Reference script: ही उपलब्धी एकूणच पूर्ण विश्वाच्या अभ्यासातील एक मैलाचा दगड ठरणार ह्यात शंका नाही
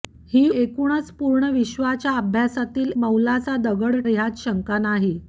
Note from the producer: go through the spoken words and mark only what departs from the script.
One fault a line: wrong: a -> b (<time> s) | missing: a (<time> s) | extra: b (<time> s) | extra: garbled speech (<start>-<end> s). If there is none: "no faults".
missing: उपलब्धी (0.5 s)
missing: एक (2.9 s)
missing: ठरणार (4.0 s)